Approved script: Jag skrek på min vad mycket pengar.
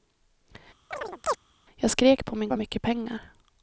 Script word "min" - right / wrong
right